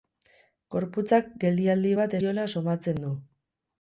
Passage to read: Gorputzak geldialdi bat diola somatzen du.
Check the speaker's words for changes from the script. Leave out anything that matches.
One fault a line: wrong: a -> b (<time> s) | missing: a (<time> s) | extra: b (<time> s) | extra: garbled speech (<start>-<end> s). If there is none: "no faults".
no faults